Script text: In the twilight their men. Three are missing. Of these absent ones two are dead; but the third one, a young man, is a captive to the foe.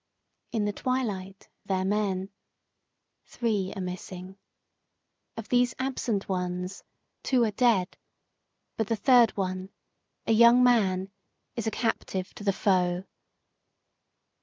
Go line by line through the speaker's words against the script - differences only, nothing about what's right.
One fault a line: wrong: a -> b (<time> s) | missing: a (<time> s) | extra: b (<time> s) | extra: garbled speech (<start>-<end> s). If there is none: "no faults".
no faults